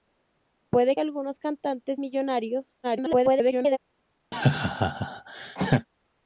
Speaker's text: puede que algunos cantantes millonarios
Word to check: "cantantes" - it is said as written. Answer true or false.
true